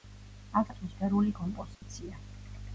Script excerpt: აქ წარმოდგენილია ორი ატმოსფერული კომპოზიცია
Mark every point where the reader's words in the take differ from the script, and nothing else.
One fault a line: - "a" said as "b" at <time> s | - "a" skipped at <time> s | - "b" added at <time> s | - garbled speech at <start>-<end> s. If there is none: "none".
- "წარმოდგენილია ორი" skipped at 0.7 s